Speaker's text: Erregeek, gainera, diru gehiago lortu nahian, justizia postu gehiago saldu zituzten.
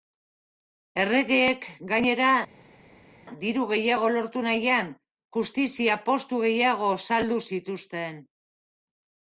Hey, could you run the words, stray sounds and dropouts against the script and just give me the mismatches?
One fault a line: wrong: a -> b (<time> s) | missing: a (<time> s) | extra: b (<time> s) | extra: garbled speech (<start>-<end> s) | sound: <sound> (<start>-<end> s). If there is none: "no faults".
no faults